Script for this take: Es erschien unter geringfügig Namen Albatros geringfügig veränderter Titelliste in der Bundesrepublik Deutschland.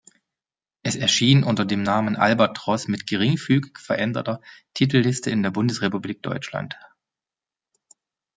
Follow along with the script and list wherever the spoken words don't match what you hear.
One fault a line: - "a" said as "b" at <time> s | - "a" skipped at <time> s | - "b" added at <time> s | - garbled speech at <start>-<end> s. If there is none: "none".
- "geringfügig" said as "dem" at 1.6 s
- "mit" added at 2.9 s